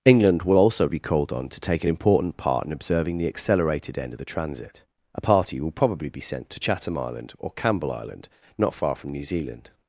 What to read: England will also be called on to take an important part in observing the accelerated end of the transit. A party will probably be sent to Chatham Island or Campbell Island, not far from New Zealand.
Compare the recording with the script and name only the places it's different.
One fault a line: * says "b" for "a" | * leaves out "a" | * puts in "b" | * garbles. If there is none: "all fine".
all fine